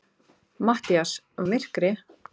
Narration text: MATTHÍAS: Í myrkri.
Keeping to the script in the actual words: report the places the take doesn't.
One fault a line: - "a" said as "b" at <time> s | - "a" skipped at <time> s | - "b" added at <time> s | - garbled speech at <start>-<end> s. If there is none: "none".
none